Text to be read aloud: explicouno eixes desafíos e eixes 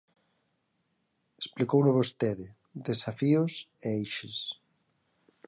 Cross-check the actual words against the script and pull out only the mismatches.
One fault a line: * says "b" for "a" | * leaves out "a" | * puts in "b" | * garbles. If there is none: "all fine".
* says "vostede" for "eixes"